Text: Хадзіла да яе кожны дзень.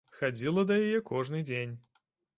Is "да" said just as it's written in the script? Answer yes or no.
yes